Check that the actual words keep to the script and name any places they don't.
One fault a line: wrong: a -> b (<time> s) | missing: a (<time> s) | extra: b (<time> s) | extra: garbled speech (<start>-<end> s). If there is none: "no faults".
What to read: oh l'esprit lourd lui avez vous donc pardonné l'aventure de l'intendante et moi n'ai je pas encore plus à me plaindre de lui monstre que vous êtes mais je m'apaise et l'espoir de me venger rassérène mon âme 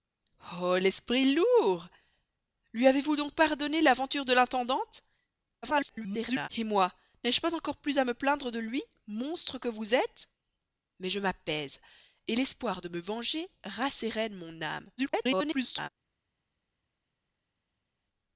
extra: garbled speech (5.6-6.5 s)
extra: garbled speech (15.0-15.9 s)